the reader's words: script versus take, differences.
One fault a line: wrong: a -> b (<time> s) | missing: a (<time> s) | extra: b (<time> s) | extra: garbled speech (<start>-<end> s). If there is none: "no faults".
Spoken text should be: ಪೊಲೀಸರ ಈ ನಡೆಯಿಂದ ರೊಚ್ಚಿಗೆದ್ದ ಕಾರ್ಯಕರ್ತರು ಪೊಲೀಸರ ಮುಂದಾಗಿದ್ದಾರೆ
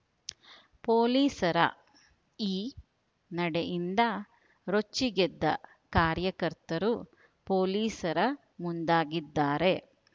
no faults